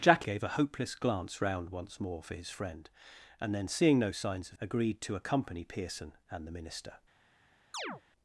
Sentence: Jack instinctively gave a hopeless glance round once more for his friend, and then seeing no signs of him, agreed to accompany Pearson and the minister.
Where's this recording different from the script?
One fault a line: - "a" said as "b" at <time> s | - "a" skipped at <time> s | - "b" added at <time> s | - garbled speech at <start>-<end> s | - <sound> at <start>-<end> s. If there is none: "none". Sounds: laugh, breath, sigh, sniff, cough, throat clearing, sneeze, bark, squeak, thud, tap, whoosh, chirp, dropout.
- "instinctively" skipped at 0.2 s
- "him" skipped at 4.6 s
- chirp at 7.7-8.0 s